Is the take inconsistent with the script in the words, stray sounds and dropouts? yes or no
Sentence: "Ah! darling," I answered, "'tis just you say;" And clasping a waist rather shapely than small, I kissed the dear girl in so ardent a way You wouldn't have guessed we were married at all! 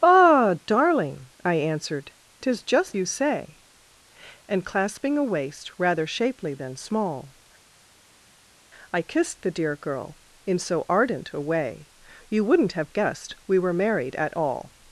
no